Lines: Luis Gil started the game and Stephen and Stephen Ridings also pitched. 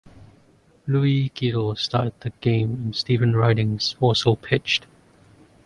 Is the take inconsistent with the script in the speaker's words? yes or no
yes